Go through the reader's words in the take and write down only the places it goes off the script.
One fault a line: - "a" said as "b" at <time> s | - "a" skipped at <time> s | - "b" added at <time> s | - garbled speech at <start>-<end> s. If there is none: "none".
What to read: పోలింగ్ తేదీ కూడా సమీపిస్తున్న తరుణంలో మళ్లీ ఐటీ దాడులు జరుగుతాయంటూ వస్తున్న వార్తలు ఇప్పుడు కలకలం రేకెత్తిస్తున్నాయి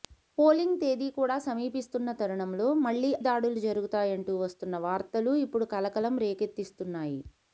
- "ఐటీ" skipped at 3.1 s